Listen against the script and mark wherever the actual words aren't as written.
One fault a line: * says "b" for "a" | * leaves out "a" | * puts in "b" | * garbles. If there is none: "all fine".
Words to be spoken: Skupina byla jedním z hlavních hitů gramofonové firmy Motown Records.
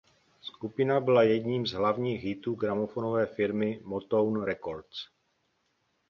all fine